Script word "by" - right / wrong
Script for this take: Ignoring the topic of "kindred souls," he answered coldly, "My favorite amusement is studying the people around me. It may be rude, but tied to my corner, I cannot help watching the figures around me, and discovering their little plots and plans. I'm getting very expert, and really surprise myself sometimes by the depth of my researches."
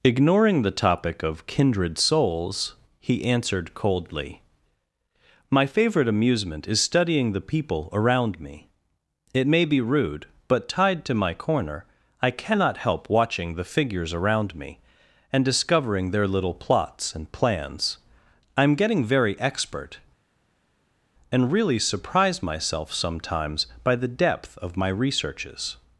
right